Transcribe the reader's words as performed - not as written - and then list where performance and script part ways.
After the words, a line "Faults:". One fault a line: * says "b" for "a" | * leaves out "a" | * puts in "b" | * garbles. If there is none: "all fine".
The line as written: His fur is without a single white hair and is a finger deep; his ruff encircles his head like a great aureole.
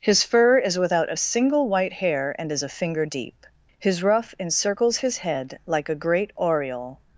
His fur is without a single white hair and is a finger deep; his ruff encircles his head like a great aureole.
Faults:
all fine